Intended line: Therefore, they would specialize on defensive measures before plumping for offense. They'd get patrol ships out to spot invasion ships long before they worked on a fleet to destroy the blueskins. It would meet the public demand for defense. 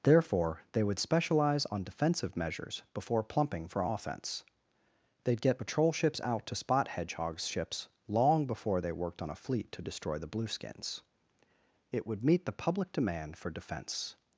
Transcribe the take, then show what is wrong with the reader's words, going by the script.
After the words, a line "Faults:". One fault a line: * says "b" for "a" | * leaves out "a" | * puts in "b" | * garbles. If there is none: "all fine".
Therefore, they would specialize on defensive measures before plumping for offense. They'd get patrol ships out to spot hedgehogs ships long before they worked on a fleet to destroy the blueskins. It would meet the public demand for defense.
Faults:
* says "hedgehogs" for "invasion"